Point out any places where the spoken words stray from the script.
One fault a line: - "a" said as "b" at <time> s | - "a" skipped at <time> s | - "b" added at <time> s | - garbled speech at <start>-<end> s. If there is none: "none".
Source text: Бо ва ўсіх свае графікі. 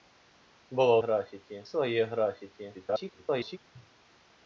- "ўсіх" said as "графікі" at 1.0 s
- garbled speech at 2.7-3.6 s